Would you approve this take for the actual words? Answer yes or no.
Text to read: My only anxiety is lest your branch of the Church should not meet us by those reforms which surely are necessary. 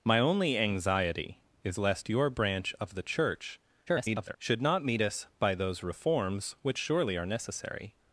no